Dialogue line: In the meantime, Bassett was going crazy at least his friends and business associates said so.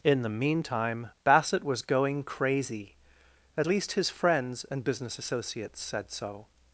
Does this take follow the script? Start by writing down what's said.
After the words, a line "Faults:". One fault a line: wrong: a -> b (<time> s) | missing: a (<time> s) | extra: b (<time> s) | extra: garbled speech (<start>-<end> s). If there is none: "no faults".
In the meantime, Bassett was going crazy at least his friends and business associates said so.
Faults:
no faults